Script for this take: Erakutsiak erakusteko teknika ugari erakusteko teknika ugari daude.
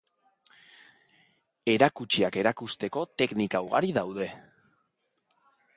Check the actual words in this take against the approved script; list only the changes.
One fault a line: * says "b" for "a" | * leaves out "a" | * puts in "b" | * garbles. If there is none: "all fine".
* leaves out "erakusteko teknika ugari"